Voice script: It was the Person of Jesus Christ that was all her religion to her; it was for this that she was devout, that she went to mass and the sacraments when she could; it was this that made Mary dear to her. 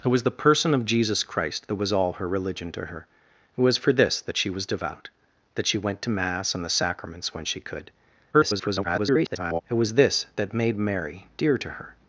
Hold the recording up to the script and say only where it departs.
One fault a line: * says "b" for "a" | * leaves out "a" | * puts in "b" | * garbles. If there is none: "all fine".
* garbles